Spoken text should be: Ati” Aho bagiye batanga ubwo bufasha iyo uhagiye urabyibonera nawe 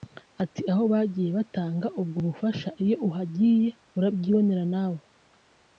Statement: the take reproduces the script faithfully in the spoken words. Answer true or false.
true